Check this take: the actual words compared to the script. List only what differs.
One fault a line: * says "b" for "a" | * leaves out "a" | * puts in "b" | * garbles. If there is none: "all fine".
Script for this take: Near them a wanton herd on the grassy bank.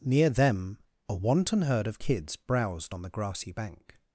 * puts in "of kids browsed"